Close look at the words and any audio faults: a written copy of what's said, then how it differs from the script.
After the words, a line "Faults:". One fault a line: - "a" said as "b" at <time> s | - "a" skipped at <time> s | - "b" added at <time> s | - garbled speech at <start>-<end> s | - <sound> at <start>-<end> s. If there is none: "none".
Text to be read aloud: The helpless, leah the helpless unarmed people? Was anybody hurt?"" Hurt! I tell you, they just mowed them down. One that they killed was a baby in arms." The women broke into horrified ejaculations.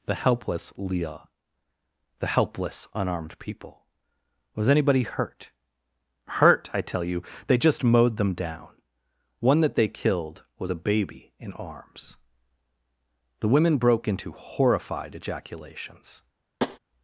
The helpless, leah the helpless unarmed people? Was anybody hurt?"" Hurt! I tell you, they just mowed them down. One that they killed was a baby in arms." The women broke into horrified ejaculations.
Faults:
- tap at 16.6-16.8 s